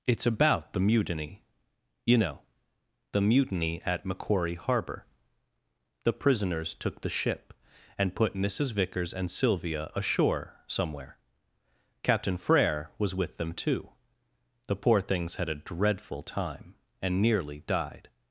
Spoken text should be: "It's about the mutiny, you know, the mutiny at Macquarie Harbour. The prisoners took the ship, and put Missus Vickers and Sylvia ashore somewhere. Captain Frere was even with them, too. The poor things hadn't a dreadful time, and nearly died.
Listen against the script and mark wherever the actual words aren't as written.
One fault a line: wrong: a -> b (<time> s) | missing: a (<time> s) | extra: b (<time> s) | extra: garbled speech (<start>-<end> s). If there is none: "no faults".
missing: even (13.1 s)
wrong: hadn't -> had (15.3 s)